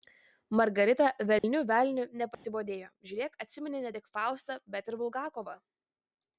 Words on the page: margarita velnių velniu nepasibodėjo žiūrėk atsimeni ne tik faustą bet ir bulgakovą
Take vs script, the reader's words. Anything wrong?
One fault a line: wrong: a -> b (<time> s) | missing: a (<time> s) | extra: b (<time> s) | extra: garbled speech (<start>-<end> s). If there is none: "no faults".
no faults